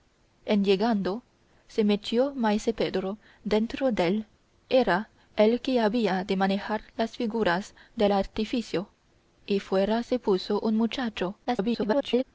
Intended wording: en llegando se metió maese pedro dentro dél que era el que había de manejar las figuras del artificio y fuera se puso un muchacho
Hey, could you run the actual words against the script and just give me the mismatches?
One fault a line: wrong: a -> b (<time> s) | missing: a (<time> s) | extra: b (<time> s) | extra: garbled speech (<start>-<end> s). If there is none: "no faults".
missing: que (4.2 s)
extra: garbled speech (11.4-12.2 s)